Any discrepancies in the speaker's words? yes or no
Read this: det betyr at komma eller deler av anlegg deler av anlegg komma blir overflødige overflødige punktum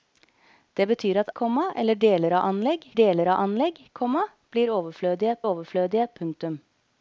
no